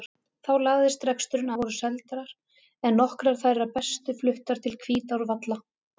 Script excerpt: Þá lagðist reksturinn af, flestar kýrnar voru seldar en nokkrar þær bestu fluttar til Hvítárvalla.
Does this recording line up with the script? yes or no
no